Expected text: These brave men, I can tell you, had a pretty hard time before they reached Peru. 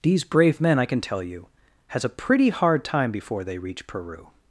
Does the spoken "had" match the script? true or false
false